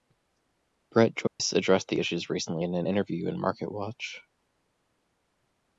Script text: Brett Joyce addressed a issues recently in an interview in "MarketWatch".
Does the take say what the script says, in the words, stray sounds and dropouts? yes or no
no